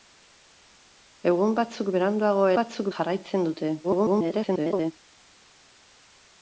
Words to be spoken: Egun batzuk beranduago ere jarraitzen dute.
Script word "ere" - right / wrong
wrong